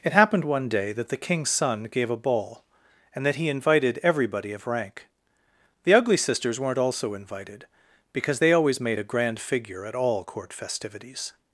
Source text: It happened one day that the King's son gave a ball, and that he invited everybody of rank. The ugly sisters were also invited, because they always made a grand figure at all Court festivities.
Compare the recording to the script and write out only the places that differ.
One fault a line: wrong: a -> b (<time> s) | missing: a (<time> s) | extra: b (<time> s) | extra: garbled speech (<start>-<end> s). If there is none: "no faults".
wrong: were -> weren't (6.6 s)